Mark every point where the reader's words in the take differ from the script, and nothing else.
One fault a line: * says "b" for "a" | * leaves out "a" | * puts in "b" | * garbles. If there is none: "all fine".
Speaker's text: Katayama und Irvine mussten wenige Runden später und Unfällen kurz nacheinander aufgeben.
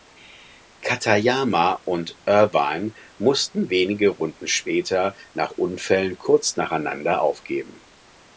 * says "nach" for "und"